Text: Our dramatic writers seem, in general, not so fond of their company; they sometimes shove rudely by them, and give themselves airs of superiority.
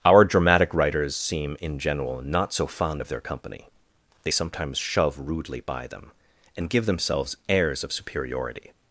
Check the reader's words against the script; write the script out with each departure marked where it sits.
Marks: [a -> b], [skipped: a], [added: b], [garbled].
Our dramatic writers seem, in general, not so fond of their company; they sometimes shove rudely by them, and give themselves airs of superiority.